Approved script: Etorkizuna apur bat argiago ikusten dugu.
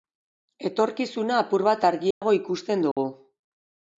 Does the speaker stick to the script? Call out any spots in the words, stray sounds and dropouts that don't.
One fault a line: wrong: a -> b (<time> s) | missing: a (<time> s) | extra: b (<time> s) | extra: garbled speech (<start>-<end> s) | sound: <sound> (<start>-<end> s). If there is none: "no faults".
sound: dropout (2.1-2.2 s)
sound: dropout (2.9-3.0 s)